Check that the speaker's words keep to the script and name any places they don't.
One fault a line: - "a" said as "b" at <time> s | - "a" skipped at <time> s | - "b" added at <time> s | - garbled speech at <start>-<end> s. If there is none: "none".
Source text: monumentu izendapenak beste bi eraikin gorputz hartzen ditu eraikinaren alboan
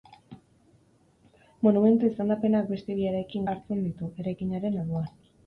- "gorputz" skipped at 3.5 s